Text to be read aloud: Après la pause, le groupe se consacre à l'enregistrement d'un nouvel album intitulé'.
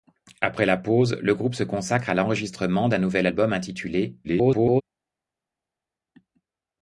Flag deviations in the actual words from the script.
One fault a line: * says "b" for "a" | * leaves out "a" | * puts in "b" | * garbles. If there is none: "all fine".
* garbles